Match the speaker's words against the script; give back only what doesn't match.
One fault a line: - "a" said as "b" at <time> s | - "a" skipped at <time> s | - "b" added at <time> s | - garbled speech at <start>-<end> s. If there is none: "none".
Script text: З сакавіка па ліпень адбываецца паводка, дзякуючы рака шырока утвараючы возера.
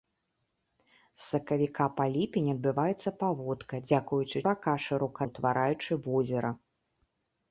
none